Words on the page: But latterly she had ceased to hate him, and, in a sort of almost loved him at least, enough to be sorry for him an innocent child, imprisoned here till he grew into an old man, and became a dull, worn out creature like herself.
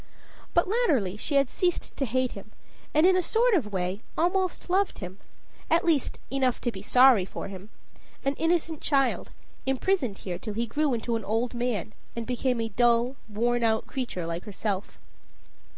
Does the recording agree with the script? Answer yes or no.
no